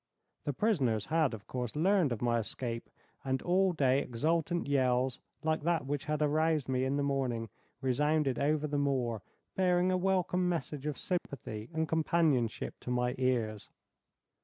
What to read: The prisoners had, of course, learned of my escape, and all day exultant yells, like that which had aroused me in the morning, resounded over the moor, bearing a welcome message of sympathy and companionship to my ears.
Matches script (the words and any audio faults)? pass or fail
fail